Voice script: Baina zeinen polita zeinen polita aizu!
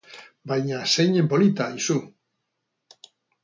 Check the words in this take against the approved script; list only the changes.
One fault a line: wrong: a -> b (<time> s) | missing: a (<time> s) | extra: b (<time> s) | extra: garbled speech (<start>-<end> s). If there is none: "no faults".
missing: zeinen polita (1.7 s)